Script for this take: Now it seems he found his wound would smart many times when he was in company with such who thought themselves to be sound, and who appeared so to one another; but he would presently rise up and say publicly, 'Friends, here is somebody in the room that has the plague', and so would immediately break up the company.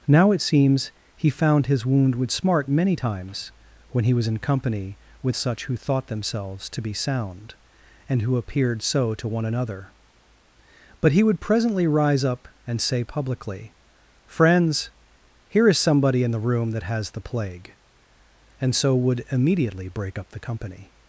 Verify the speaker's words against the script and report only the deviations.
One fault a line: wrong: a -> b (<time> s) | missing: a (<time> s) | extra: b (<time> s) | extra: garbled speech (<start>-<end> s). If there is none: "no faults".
no faults